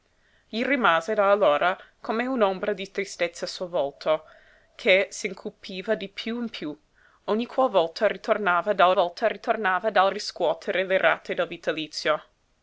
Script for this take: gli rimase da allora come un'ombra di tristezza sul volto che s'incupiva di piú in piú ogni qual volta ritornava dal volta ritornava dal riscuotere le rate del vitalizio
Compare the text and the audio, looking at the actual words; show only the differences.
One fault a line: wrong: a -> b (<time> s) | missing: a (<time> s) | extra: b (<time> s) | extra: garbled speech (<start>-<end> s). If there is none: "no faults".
no faults